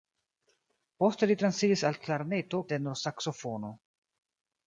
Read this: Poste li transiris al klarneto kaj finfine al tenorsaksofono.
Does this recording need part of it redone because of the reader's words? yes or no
yes